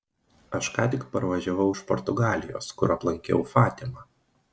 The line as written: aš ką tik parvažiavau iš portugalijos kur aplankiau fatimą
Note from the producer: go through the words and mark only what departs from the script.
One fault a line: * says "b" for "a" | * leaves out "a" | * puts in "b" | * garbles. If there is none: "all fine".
all fine